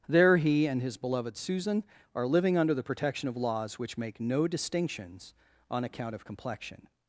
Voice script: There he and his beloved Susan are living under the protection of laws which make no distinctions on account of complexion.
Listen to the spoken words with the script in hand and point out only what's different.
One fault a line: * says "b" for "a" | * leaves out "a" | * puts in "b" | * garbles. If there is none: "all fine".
all fine